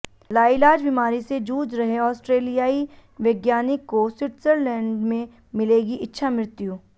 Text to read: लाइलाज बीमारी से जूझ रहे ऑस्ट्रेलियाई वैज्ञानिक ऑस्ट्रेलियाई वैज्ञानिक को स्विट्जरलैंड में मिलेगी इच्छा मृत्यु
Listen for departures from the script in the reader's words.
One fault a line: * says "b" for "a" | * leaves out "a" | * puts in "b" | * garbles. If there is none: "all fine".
* leaves out "ऑस्ट्रेलियाई वैज्ञानिक"